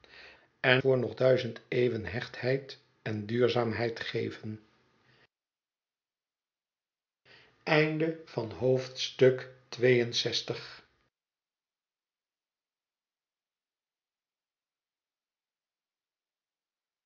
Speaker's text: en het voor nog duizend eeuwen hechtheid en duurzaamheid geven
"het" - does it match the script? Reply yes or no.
no